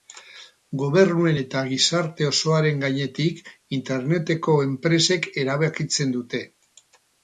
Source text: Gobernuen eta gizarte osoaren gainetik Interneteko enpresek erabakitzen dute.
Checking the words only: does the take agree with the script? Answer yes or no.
yes